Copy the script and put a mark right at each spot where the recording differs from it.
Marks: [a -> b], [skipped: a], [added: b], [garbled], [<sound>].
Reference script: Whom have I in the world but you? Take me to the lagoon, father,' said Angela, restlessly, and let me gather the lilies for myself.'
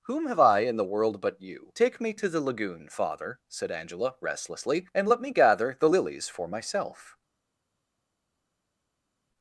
Whom have I in the world but you? Take me to the lagoon, father,' said Angela, restlessly, and let me gather the lilies for myself.'